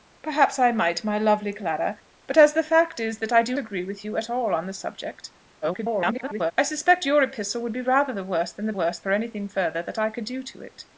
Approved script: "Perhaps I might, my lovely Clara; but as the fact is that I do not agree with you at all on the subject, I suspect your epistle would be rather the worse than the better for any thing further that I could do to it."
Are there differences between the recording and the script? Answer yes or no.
yes